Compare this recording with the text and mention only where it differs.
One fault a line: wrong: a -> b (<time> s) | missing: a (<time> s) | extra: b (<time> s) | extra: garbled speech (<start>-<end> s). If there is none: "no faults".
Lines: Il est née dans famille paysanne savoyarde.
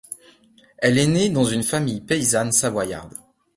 wrong: Il -> Elle (0.8 s)
extra: une (1.4 s)